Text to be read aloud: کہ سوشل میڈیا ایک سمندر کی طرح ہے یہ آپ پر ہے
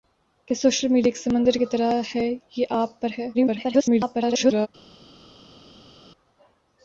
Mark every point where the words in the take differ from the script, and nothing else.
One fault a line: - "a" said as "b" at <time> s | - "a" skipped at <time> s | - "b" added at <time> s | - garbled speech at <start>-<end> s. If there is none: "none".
- garbled speech at 3.3-4.7 s